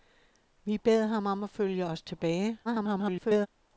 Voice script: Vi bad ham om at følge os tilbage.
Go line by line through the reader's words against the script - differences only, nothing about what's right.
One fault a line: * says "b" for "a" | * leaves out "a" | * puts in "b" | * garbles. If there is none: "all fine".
* garbles